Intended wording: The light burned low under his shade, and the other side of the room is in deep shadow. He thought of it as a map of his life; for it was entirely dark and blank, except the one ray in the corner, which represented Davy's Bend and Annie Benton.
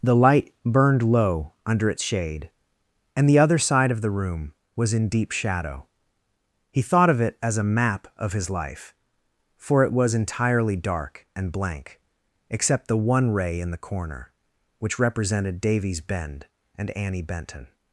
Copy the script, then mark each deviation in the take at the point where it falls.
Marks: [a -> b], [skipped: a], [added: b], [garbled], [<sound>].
The light burned low under [his -> its] shade, and the other side of the room [is -> was] in deep shadow. He thought of it as a map of his life; for it was entirely dark and blank, except the one ray in the corner, which represented Davy's Bend and Annie Benton.